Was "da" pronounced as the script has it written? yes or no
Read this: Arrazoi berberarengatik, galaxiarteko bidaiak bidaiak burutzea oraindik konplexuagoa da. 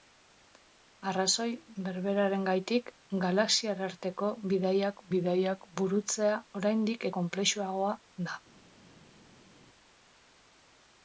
yes